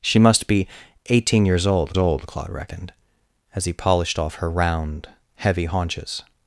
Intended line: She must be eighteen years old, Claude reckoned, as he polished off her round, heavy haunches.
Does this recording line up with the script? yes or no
no